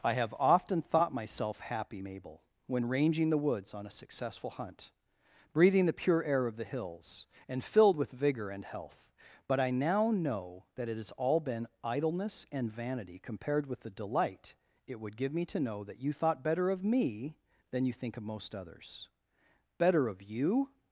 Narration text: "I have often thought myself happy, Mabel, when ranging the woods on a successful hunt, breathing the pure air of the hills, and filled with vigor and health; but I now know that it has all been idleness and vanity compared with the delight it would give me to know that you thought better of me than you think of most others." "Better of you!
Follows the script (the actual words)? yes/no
yes